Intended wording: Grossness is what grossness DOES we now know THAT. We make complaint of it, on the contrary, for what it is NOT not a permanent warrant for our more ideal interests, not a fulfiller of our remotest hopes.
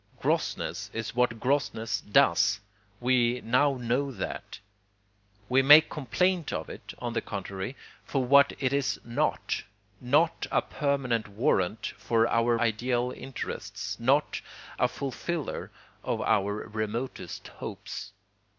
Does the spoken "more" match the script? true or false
false